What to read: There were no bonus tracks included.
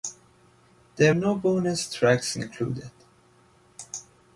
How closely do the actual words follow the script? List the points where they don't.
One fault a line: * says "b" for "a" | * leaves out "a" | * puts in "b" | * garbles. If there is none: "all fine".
* leaves out "were"